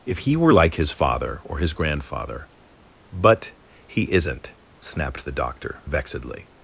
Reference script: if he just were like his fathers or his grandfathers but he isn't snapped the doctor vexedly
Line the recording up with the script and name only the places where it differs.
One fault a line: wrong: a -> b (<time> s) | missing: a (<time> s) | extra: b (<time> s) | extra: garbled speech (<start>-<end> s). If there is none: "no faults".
missing: just (0.3 s)
wrong: fathers -> father (0.9 s)
wrong: grandfathers -> grandfather (1.7 s)